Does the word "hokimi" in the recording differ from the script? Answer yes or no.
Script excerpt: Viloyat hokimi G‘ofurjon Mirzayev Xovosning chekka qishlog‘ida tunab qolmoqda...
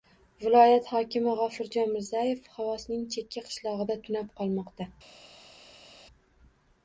no